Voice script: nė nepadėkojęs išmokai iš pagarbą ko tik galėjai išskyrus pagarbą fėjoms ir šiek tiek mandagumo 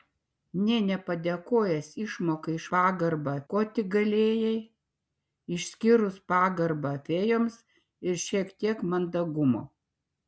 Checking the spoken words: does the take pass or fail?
pass